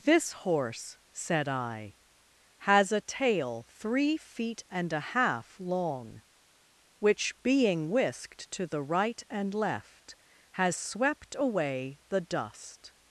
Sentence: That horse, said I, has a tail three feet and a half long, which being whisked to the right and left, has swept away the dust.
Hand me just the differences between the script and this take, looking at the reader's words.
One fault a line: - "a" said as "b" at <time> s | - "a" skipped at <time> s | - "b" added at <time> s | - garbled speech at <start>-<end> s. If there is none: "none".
- "That" said as "This" at 0.0 s